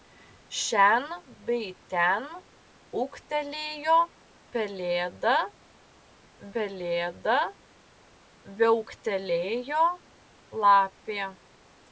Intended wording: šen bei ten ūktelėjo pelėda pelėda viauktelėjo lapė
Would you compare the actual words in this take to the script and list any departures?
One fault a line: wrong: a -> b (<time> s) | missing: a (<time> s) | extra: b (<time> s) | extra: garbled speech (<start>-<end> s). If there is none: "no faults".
no faults